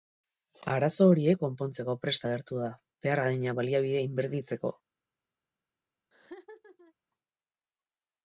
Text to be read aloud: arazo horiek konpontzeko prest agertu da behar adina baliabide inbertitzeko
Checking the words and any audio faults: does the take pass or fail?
fail